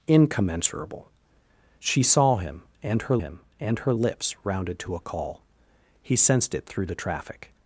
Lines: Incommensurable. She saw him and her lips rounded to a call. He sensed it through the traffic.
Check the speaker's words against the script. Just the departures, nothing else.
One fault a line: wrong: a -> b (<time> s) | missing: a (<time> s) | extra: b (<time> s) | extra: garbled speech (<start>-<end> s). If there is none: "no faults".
extra: him and her (3.1 s)